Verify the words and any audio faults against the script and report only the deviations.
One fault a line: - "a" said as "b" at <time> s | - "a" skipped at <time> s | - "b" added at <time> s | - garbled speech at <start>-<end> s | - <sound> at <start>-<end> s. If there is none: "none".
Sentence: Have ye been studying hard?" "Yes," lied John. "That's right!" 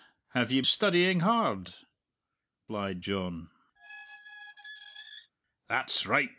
- "been" skipped at 0.6 s
- "Yes" skipped at 1.7 s
- squeak at 3.8-5.3 s